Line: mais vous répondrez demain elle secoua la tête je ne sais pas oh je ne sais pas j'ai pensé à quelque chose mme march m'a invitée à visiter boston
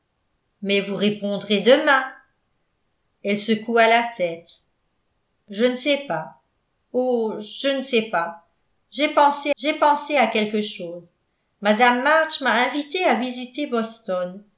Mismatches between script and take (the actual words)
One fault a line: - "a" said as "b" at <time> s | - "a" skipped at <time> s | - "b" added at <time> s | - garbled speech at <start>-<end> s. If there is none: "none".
- "j'ai pensé" added at 9.6 s